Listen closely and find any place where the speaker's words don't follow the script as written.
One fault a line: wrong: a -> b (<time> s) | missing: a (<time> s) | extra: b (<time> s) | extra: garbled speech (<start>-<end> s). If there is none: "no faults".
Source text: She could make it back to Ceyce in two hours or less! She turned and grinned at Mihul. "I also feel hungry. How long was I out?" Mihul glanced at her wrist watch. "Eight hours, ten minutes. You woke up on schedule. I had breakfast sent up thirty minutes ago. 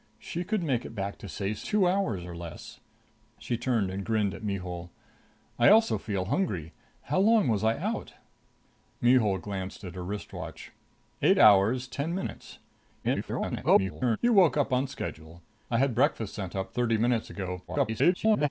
missing: in (1.6 s)
extra: garbled speech (13.0-14.2 s)
extra: garbled speech (17.7-18.5 s)